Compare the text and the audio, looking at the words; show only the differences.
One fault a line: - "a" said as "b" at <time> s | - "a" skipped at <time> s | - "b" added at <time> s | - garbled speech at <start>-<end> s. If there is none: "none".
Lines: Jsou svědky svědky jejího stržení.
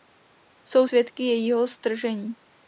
- "svědky" skipped at 1.2 s